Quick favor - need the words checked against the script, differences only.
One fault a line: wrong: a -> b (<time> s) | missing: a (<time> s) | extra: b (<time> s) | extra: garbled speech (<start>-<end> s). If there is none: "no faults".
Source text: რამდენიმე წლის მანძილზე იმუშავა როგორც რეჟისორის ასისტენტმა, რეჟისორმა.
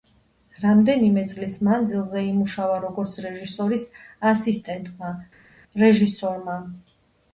no faults